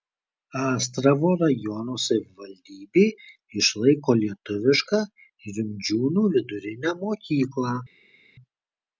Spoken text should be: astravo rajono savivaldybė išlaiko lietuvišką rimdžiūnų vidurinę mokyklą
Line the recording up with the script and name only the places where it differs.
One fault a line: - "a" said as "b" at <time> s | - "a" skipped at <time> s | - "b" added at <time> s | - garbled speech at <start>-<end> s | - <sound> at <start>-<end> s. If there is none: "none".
none